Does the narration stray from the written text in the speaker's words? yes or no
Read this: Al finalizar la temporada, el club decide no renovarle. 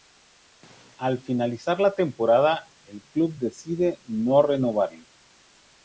no